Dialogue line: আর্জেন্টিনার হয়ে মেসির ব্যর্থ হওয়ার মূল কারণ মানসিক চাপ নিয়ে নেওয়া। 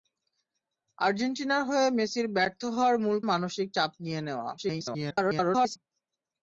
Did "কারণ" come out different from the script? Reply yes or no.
yes